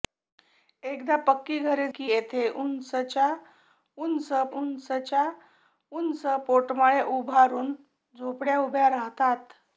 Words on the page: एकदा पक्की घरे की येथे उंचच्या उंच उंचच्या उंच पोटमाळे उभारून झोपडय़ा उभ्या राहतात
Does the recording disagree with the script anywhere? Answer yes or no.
no